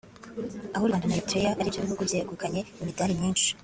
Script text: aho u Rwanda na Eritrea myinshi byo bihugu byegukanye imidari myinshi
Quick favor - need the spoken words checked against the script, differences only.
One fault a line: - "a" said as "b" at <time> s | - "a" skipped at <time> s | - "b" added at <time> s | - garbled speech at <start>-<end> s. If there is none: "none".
- "myinshi" said as "ari" at 1.6 s